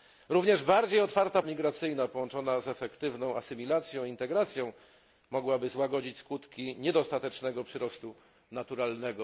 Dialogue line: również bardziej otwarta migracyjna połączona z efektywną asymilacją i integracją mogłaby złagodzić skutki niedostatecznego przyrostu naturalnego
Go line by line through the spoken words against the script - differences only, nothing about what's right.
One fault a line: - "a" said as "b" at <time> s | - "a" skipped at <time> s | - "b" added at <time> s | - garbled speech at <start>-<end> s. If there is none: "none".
none